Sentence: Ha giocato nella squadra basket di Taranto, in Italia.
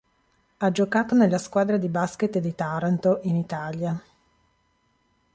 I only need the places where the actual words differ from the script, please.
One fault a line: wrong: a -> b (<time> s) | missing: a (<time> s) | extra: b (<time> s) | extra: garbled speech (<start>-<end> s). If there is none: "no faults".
extra: di (1.8 s)